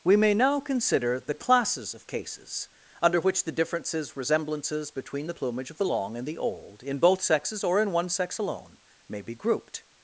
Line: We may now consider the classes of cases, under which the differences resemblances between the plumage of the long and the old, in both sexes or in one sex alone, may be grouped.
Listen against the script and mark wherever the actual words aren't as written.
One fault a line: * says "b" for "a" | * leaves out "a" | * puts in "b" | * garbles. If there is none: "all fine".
all fine